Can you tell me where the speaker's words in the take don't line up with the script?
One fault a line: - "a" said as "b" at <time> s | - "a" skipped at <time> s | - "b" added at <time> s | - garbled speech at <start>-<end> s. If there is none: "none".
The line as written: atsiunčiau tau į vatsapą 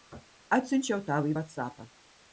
none